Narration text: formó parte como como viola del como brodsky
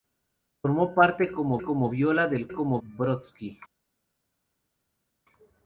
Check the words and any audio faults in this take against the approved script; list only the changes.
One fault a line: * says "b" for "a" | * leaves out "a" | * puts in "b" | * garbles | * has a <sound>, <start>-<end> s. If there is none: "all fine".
all fine